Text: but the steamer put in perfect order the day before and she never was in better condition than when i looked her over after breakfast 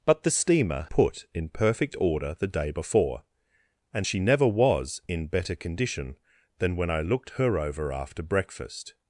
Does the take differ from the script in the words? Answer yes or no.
no